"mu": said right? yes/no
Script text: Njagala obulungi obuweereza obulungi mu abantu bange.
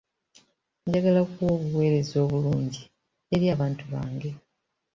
no